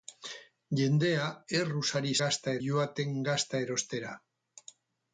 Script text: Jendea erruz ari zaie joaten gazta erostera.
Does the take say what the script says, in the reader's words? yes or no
no